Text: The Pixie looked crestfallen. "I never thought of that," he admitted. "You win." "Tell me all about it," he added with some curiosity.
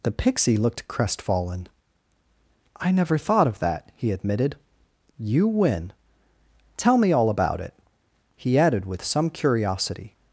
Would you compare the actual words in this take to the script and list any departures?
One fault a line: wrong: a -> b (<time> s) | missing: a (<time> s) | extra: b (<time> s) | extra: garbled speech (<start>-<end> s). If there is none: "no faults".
no faults